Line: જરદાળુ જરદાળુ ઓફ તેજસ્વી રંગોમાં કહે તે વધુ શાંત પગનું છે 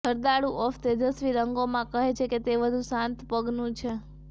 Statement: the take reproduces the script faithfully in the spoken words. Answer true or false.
false